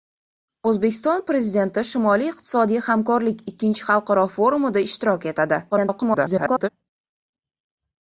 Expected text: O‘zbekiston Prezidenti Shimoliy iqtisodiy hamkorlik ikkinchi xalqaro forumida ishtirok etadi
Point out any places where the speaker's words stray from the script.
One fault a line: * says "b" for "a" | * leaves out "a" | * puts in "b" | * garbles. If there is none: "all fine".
* garbles